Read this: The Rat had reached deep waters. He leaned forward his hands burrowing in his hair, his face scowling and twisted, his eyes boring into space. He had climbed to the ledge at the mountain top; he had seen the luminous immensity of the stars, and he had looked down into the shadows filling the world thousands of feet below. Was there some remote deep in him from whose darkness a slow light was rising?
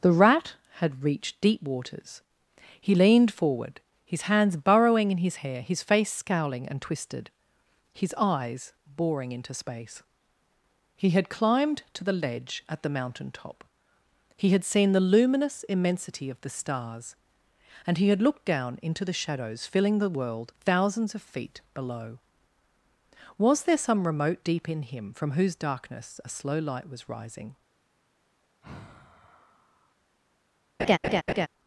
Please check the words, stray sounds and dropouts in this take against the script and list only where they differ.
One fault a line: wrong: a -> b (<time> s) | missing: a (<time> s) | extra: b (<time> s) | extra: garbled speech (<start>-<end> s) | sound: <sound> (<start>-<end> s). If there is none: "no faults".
sound: sigh (28.6-30.0 s)
sound: laugh (30.8-31.5 s)